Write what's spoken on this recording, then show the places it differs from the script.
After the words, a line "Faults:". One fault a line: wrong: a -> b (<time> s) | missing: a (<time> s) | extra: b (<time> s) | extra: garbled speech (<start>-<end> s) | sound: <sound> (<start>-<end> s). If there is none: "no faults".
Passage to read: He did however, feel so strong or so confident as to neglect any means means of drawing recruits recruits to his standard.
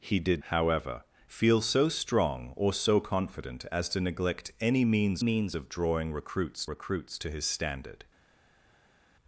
He did however, feel so strong or so confident as to neglect any means means of drawing recruits recruits to his standard.
Faults:
no faults